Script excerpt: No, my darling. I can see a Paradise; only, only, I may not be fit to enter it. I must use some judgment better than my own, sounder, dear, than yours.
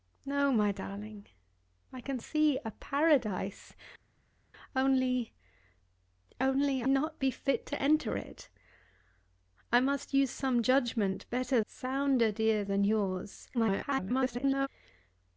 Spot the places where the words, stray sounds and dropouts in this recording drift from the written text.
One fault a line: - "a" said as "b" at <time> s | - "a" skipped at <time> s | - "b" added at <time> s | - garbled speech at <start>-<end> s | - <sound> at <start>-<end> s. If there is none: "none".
- "I may" skipped at 6.8 s
- "than my own" skipped at 11.6 s
- garbled speech at 13.5-14.7 s